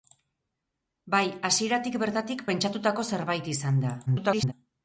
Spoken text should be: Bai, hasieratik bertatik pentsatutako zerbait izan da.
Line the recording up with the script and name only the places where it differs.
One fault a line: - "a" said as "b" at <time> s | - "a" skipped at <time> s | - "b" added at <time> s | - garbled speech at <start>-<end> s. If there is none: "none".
- garbled speech at 4.1-4.5 s